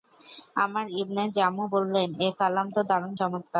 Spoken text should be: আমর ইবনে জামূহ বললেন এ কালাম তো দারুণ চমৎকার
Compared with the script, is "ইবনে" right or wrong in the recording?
right